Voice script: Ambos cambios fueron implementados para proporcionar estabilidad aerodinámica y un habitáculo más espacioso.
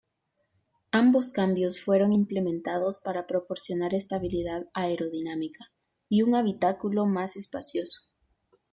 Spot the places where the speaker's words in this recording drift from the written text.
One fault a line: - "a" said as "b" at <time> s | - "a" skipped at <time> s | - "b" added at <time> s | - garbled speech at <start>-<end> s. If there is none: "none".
none